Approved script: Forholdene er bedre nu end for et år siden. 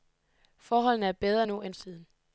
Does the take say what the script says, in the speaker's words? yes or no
no